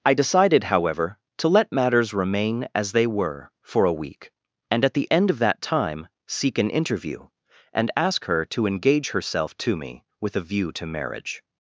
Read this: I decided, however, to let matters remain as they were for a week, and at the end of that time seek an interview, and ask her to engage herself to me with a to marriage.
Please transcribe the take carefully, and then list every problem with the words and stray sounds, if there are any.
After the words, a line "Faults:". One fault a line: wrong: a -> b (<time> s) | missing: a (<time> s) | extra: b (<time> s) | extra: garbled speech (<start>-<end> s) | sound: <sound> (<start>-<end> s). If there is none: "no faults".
I decided, however, to let matters remain as they were for a week, and at the end of that time seek an interview, and ask her to engage herself to me with a view to marriage.
Faults:
extra: view (10.4 s)